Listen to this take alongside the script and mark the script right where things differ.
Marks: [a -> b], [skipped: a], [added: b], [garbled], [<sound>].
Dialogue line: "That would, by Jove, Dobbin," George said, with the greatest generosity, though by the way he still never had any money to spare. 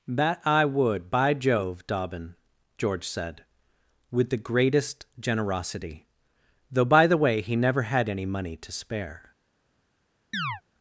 "That [added: I] would, by Jove, Dobbin," George said, with the greatest generosity, though by the way he [skipped: still] never had any money to spare. [chirp]